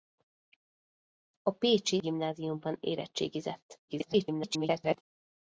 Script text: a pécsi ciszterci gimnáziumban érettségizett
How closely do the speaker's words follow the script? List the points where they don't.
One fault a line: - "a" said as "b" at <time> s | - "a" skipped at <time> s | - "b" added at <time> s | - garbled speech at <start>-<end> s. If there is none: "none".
- "ciszterci" skipped at 2.0 s
- garbled speech at 3.9-5.0 s